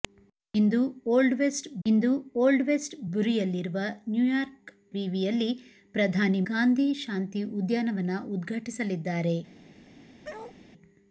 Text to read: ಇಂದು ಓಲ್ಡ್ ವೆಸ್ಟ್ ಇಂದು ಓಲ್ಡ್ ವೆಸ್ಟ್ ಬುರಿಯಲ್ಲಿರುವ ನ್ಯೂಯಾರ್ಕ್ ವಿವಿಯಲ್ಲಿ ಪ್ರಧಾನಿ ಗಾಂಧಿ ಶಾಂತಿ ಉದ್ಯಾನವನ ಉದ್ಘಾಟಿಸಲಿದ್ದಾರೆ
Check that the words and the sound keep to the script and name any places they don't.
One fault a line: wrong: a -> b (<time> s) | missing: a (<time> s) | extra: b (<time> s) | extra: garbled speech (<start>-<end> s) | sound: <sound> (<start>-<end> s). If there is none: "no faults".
sound: bark (10.2-10.6 s)